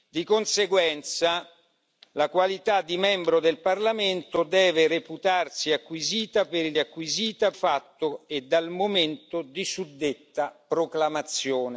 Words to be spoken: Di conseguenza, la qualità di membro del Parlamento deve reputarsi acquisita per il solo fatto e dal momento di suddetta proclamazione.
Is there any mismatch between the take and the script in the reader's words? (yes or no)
yes